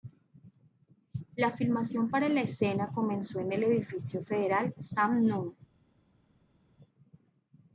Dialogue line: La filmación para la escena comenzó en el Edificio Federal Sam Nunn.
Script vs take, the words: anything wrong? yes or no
no